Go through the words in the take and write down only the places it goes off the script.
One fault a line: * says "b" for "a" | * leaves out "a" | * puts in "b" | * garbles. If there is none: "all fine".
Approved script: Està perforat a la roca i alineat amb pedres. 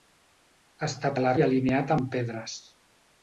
* leaves out "perforat"
* leaves out "roca"